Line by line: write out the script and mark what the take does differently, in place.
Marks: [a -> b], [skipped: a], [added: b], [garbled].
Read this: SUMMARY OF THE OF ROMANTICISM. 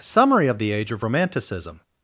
SUMMARY OF THE [added: AGE] OF ROMANTICISM.